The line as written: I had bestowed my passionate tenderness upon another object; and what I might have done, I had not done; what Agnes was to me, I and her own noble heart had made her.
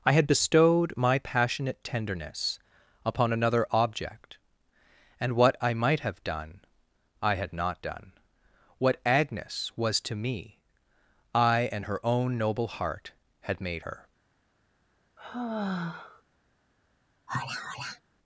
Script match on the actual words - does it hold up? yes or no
yes